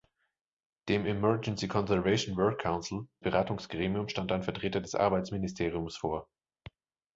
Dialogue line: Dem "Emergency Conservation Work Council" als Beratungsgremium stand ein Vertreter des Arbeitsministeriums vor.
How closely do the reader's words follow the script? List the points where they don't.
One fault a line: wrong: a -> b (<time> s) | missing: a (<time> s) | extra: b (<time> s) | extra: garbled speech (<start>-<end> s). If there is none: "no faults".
missing: als (3.1 s)